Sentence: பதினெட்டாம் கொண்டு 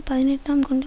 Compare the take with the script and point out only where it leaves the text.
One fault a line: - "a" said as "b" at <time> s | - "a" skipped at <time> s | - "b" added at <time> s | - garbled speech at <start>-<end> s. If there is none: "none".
none